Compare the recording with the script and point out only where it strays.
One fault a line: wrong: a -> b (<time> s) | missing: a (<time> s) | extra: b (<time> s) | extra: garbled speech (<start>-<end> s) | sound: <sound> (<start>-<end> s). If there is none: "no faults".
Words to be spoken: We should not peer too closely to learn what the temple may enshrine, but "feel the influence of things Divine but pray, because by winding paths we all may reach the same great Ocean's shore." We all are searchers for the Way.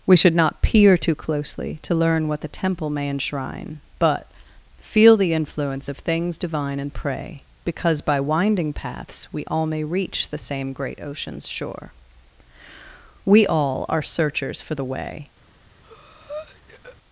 wrong: but -> and (6.8 s)
sound: breath (15.8-17.0 s)